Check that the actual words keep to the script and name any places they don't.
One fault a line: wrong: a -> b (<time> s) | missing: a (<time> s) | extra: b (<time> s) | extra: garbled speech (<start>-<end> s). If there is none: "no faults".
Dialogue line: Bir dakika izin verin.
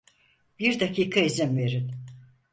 no faults